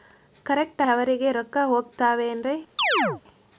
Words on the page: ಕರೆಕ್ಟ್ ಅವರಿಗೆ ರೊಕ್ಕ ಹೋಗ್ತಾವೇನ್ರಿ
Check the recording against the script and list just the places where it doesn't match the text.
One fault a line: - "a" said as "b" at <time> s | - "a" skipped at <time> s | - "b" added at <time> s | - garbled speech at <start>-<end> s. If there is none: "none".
none